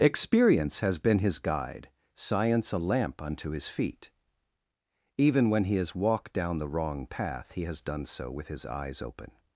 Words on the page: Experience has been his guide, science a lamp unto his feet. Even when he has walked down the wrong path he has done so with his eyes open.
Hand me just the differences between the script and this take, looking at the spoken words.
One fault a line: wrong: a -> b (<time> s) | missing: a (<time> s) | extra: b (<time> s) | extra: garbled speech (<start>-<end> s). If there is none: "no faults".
no faults